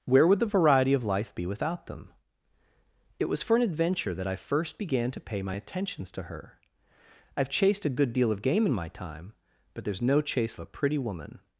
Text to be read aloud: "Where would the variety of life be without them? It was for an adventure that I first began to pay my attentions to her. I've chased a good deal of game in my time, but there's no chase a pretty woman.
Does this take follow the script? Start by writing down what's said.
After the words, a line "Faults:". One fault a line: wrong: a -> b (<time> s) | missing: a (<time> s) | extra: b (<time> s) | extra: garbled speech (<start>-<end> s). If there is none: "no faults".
"Where would the variety of life be without them? It was for an adventure that I first began to pay my attentions to her. I've chased a good deal of game in my time, but there's no chase a pretty woman.
Faults:
no faults